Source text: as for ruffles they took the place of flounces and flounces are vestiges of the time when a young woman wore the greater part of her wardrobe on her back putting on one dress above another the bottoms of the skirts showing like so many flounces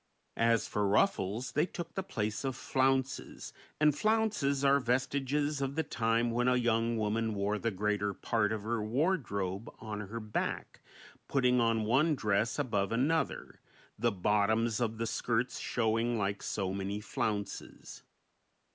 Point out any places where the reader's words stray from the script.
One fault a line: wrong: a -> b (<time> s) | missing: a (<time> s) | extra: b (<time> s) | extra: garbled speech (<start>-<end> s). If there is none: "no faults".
no faults